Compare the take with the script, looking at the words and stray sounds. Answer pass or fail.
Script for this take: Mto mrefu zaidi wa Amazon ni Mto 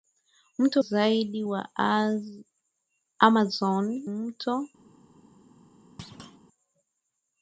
fail